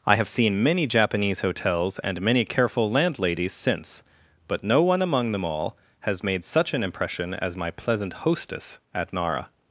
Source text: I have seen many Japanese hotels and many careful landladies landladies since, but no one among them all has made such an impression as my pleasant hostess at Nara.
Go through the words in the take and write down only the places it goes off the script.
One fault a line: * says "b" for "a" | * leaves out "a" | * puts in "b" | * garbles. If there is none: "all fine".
* leaves out "landladies"